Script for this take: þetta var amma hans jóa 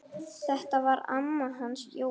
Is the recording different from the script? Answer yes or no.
no